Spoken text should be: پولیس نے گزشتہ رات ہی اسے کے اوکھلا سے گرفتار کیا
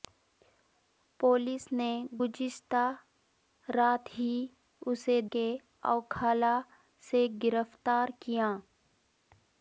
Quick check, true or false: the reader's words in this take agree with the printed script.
true